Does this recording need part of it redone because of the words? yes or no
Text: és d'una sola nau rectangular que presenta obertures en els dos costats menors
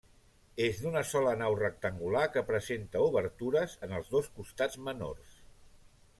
no